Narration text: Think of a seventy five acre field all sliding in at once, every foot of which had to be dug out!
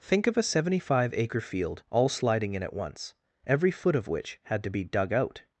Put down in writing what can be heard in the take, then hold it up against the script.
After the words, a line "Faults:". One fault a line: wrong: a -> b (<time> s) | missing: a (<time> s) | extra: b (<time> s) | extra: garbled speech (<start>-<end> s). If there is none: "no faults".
Think of a seventy five acre field all sliding in at once, every foot of which had to be dug out!
Faults:
no faults